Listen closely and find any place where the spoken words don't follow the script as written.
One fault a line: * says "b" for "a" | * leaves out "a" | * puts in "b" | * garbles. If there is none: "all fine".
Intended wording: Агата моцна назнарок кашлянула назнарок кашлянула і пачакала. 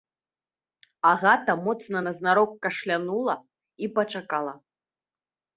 * leaves out "назнарок кашлянула"